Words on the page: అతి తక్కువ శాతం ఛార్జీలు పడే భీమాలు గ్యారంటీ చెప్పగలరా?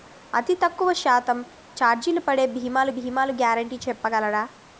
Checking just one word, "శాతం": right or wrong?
right